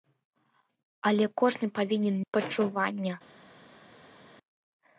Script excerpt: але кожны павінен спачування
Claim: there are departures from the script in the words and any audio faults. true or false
false